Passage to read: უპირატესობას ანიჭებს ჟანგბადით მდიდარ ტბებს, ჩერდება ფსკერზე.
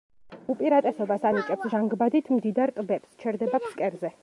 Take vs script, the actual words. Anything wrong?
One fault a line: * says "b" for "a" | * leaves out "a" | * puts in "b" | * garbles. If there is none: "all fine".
all fine